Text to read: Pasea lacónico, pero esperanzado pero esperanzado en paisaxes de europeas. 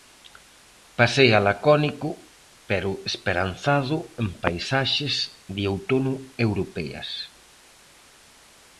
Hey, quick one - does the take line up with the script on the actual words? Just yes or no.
no